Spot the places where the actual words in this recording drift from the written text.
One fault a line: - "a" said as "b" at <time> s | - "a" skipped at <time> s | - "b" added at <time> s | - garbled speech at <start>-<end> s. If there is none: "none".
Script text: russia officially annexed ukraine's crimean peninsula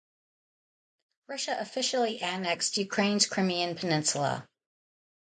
none